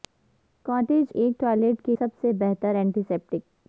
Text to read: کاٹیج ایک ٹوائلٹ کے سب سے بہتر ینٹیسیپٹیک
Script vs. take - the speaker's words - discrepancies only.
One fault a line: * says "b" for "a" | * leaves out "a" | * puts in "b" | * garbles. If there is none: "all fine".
all fine